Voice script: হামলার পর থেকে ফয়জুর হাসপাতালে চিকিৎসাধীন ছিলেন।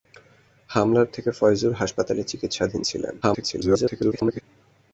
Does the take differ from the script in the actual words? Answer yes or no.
yes